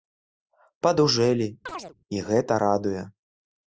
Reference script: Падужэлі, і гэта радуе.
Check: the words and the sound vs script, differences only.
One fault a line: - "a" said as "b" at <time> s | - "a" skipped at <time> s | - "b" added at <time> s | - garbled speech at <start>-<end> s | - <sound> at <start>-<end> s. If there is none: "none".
- chirp at 1.7-1.9 s